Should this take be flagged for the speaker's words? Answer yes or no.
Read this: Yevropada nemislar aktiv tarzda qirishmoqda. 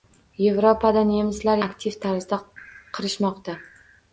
no